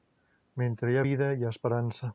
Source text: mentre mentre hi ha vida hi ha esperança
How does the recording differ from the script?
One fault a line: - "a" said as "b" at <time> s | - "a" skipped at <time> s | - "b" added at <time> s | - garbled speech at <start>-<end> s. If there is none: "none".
- "mentre" skipped at 0.9 s